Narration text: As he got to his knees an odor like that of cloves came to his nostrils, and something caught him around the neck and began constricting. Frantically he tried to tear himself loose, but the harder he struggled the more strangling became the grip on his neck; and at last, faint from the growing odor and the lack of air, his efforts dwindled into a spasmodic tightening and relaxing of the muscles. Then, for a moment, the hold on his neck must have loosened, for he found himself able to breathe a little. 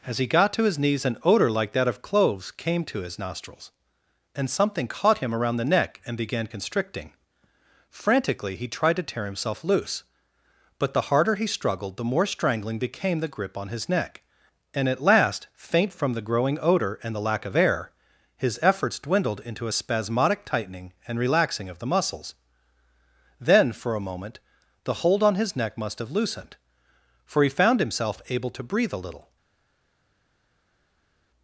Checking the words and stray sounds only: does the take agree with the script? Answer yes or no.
yes